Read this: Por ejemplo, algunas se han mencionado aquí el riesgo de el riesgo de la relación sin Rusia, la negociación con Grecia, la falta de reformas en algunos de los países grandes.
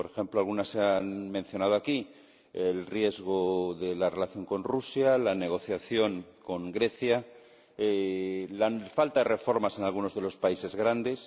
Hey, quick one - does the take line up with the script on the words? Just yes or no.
no